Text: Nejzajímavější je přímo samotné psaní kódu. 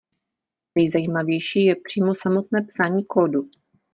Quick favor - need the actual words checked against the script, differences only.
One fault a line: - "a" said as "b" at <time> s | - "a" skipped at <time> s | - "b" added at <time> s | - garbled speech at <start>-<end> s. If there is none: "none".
none